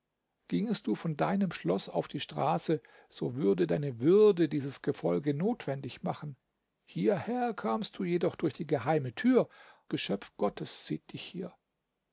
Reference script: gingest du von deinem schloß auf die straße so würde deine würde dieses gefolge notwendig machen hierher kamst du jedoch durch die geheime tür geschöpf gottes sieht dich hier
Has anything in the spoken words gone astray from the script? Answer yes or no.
no